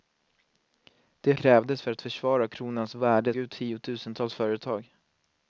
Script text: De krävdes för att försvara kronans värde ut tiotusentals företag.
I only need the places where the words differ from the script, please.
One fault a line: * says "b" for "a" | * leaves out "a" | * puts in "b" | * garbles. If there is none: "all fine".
all fine